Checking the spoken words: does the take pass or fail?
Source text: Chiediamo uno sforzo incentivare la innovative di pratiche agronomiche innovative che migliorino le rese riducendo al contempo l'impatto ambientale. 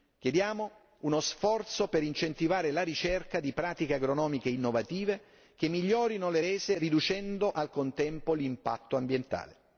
fail